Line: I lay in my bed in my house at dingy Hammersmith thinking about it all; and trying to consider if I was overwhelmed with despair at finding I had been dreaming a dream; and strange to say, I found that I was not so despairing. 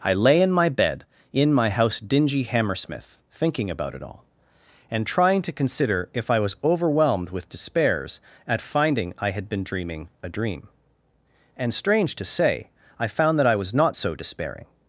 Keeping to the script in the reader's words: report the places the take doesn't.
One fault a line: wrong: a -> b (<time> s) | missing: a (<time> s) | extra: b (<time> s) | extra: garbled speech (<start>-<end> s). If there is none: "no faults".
missing: at (2.0 s)
wrong: despair -> despairs (7.5 s)